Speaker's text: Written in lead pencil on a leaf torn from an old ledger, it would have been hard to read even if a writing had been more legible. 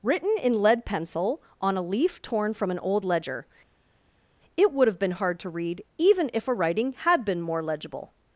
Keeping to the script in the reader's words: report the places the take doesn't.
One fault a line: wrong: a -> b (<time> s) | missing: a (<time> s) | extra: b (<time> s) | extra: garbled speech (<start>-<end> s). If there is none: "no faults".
no faults